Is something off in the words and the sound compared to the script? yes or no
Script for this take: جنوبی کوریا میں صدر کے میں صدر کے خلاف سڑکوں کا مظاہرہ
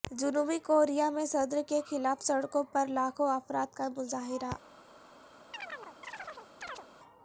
yes